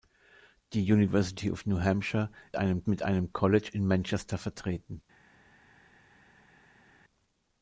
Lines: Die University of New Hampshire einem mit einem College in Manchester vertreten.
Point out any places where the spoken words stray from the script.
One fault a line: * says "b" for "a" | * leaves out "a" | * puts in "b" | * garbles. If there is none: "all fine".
all fine